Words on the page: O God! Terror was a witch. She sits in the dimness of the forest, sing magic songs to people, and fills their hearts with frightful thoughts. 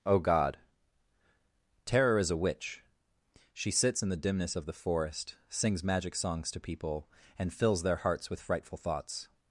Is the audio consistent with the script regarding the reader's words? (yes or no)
no